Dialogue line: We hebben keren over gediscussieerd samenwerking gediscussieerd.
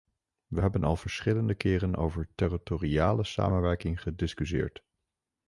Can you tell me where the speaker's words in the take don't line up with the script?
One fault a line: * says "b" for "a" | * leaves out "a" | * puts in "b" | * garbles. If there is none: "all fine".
* puts in "al verschillende"
* says "territoriale" for "gediscussieerd"